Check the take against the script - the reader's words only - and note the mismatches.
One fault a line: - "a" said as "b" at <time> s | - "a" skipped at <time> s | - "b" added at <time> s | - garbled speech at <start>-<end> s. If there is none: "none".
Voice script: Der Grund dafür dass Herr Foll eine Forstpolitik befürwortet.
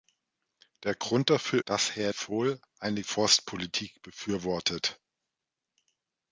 none